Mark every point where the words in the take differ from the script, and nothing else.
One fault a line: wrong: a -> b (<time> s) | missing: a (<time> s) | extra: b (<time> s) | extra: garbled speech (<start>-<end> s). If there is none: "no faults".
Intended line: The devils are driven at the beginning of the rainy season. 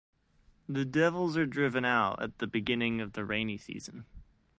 extra: out (1.9 s)